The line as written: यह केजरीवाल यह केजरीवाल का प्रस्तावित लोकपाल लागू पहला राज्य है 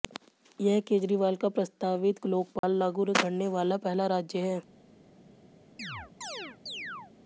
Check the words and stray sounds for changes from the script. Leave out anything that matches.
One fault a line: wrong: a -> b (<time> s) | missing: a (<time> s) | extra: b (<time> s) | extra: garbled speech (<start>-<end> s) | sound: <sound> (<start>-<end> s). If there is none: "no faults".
missing: यह केजरीवाल (1.4 s)
sound: dropout (2.6-2.6 s)
extra: करने वाला (3.1 s)
sound: chirp (5.8-7.1 s)